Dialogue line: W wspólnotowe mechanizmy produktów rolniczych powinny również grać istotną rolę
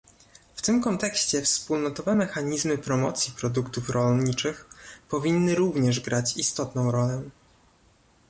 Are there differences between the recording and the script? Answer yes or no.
yes